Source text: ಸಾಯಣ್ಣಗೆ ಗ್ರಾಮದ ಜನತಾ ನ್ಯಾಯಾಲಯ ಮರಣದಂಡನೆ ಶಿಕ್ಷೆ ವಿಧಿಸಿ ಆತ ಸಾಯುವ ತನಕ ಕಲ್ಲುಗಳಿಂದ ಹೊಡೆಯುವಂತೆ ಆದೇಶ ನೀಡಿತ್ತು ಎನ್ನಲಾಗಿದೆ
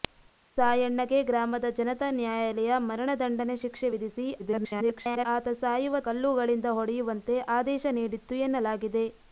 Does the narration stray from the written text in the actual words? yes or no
yes